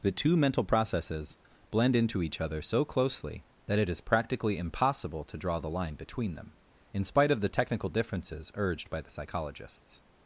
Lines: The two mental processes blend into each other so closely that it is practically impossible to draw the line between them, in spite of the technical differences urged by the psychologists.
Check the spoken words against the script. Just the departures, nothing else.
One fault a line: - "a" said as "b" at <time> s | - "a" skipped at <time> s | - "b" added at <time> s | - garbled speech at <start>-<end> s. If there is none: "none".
none